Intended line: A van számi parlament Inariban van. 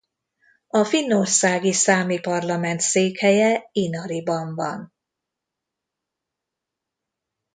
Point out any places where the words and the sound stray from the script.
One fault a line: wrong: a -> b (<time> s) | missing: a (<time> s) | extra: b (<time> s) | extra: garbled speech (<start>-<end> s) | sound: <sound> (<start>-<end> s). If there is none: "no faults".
wrong: van -> finnországi (0.8 s)
extra: székhelye (2.8 s)